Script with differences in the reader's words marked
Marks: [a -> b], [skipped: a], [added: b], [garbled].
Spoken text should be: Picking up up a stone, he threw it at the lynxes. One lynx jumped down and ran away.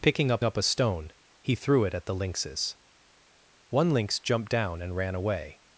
Picking up up a stone, he threw it at the lynxes. One lynx jumped down and ran away.